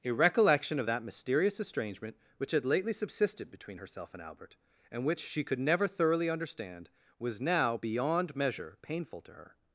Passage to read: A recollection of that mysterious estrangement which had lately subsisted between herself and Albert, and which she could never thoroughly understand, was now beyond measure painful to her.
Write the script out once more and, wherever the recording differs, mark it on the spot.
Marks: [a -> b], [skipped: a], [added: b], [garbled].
A recollection of that mysterious estrangement which had lately subsisted between herself and Albert, and which she could never thoroughly understand, was now beyond measure painful to her.